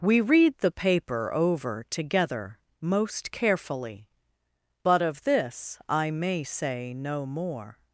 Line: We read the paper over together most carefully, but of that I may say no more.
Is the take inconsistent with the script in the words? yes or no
yes